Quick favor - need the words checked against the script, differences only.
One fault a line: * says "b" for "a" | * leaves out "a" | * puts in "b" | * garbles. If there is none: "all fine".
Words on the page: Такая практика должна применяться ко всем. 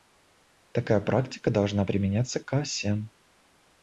all fine